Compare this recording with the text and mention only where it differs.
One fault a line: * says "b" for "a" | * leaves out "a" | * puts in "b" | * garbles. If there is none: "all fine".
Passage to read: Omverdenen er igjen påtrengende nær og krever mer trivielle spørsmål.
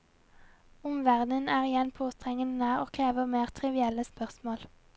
all fine